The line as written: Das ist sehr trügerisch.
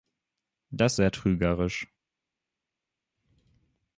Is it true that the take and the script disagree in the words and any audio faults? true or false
true